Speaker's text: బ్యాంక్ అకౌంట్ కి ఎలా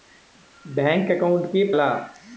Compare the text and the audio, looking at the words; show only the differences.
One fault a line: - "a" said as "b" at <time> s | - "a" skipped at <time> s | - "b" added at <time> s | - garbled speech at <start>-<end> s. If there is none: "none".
none